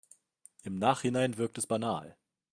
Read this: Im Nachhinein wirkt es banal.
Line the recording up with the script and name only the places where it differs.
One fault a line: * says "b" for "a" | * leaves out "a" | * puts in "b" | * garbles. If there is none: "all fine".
all fine